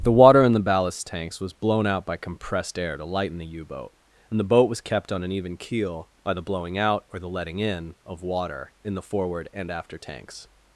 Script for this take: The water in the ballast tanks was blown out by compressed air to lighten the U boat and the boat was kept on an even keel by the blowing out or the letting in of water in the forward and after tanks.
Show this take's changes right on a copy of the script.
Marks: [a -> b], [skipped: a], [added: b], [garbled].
The water in the ballast tanks was blown out by compressed air to lighten the U boat and the boat was kept on an even keel by the blowing out or the letting in of water in the forward and after tanks.